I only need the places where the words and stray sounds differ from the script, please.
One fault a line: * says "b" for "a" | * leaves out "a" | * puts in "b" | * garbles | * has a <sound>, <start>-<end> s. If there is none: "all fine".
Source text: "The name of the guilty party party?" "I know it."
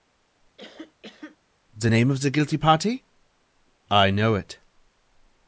* has a cough, 0.6-1.4 s
* leaves out "party"